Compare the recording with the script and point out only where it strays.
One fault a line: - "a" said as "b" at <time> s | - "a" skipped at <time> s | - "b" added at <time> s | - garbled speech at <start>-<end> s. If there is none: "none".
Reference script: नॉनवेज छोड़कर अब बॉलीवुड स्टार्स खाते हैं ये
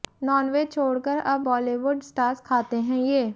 none